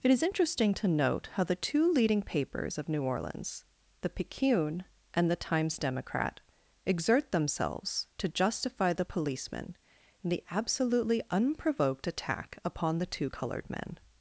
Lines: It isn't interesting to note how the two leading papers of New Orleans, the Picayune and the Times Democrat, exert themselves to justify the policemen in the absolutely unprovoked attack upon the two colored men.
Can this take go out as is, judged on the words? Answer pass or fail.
fail